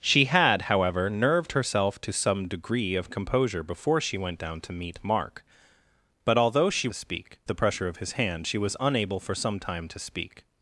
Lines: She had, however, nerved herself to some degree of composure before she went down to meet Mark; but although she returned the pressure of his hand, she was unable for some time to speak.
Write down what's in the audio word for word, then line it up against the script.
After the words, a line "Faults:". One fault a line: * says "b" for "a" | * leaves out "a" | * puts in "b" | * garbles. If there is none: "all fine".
She had, however, nerved herself to some degree of composure before she went down to meet Mark; but although she speak the pressure of his hand, she was unable for some time to speak.
Faults:
* says "speak" for "returned"